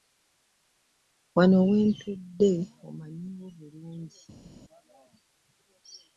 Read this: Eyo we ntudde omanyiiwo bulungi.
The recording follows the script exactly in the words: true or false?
false